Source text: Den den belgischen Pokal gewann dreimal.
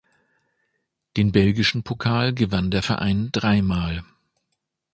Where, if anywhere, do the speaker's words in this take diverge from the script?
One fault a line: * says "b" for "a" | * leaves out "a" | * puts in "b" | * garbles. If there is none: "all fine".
* leaves out "den"
* puts in "der Verein"